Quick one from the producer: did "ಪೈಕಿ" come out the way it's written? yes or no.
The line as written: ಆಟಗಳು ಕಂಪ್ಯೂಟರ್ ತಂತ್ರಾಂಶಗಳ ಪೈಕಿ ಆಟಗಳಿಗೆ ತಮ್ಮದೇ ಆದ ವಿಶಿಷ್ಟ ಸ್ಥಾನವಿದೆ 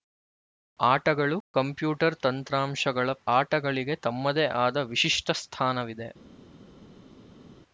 no